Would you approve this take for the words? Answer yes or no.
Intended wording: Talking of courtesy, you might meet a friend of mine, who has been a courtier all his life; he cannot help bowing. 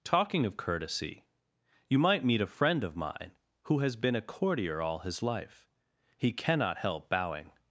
yes